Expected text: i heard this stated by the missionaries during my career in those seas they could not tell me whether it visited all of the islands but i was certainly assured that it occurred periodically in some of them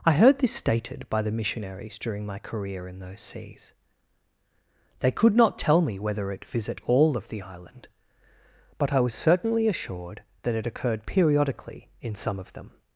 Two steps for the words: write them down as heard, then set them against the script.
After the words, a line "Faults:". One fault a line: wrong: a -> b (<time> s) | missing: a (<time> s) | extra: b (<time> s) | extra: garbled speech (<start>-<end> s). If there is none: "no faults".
i heard this stated by the missionaries during my career in those seas they could not tell me whether it visit all of the island but i was certainly assured that it occurred periodically in some of them
Faults:
wrong: visited -> visit (6.4 s)
wrong: islands -> island (7.4 s)